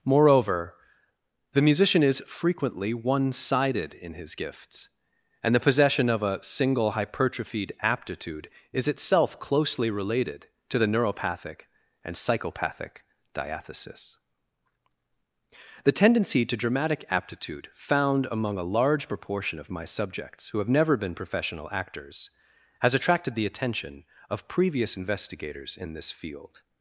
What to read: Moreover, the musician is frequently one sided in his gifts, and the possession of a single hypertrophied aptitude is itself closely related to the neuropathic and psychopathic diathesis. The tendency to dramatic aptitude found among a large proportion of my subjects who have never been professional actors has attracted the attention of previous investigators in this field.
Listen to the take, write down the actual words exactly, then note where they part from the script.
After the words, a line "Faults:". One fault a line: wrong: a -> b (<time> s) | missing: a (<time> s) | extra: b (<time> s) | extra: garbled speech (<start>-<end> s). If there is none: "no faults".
Moreover, the musician is frequently one sided in his gifts, and the possession of a single hypertrophied aptitude is itself closely related to the neuropathic and psychopathic diathesis. The tendency to dramatic aptitude found among a large proportion of my subjects who have never been professional actors has attracted the attention of previous investigators in this field.
Faults:
no faults